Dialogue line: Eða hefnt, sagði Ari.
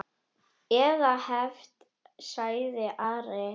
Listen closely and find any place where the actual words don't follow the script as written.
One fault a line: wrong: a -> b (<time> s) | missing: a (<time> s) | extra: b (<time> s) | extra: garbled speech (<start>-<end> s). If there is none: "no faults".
no faults